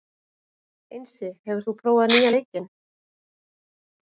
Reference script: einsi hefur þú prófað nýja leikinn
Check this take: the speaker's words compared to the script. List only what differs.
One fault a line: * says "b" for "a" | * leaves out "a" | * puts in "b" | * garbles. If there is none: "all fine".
all fine